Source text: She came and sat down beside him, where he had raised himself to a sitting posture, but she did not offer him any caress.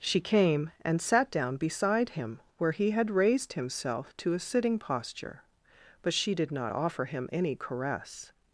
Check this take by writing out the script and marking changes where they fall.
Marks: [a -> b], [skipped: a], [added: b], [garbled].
She came and sat down beside him, where he had raised himself to a sitting posture, but she did not offer him any caress.